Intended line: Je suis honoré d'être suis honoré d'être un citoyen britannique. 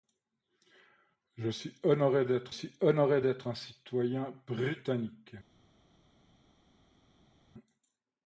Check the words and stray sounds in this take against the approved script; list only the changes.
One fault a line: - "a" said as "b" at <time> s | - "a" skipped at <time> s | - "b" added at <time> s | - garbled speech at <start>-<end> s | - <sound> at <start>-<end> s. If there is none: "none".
none